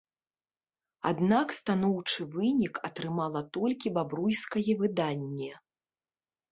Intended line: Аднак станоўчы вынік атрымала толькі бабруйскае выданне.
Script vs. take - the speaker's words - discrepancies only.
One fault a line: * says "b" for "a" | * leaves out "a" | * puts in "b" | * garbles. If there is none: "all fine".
all fine